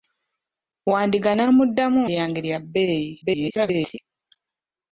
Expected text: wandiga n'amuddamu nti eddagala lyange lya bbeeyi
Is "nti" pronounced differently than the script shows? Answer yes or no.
yes